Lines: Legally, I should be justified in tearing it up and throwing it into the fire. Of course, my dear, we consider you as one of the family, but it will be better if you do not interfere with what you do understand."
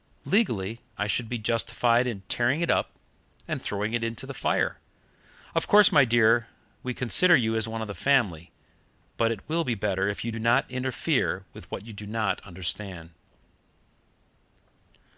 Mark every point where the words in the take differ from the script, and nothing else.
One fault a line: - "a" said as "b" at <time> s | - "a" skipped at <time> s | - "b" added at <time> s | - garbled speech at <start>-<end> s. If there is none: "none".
- "not" added at 12.1 s